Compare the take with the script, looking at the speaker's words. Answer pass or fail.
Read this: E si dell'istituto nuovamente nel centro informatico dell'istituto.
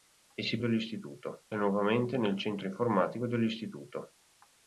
pass